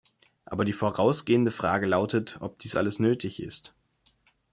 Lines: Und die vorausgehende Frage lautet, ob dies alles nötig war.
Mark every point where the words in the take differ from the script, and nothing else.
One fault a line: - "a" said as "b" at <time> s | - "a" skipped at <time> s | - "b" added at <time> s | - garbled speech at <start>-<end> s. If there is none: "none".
- "Und" said as "Aber" at 0.5 s
- "war" said as "ist" at 3.4 s